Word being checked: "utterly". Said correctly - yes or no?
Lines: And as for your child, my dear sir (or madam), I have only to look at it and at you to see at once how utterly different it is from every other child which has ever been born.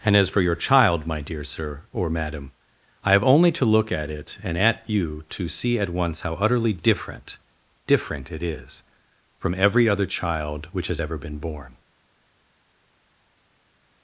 yes